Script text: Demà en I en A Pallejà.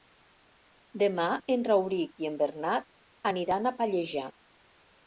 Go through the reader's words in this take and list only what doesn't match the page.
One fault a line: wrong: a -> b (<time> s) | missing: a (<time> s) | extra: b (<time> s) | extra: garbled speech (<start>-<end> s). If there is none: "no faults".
extra: Rauric (1.7 s)
extra: Bernat aniran (2.5 s)